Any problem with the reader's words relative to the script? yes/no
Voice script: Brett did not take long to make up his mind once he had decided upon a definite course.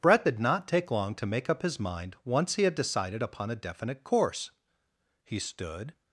yes